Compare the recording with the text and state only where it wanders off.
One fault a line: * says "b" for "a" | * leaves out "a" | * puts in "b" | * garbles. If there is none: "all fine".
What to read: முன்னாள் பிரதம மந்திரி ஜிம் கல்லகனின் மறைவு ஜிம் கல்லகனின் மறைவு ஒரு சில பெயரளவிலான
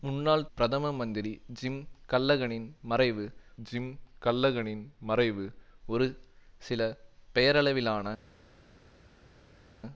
all fine